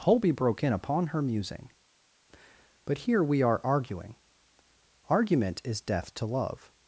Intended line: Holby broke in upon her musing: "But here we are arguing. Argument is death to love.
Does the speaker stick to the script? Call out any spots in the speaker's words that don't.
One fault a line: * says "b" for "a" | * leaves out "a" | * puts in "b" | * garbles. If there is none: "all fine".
all fine